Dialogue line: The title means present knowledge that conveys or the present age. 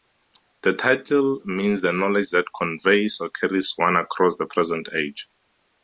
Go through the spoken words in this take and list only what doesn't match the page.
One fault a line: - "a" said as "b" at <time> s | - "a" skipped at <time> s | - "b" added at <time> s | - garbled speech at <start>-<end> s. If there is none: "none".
- "present" said as "the" at 1.8 s
- "carries one across" added at 3.3 s